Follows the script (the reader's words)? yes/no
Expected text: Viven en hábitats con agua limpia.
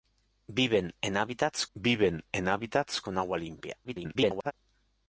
no